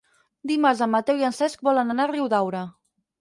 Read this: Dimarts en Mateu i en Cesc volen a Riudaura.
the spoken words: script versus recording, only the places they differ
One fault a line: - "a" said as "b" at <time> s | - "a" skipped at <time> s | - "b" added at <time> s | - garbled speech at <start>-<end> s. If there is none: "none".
- "anar" added at 1.9 s